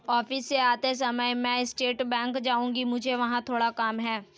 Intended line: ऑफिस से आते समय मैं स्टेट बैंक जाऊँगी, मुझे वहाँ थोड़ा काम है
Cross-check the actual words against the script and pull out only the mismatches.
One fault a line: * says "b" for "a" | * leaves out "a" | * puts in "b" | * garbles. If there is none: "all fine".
all fine